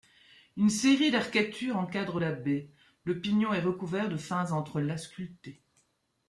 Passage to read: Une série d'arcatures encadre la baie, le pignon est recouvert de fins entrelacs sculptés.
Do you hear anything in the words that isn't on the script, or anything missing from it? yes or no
no